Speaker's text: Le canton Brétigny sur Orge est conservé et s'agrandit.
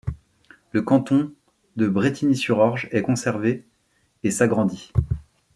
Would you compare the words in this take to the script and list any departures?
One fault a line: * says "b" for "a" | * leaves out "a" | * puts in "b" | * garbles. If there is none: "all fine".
* puts in "de"